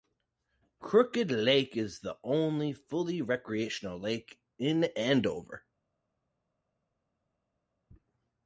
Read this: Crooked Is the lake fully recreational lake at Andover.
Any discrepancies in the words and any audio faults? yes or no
yes